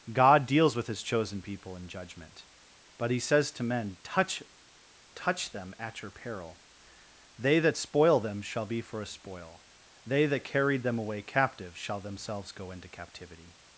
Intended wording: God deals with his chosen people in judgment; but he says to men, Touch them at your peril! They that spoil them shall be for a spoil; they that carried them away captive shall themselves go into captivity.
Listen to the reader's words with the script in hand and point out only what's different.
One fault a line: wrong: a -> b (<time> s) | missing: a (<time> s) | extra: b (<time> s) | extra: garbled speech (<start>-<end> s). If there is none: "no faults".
extra: Touch (5.1 s)